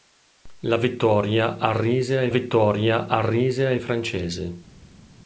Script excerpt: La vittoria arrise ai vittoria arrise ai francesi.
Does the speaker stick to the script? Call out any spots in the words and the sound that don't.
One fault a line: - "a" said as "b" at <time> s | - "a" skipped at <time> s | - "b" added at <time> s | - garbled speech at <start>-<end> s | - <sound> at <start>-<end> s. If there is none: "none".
none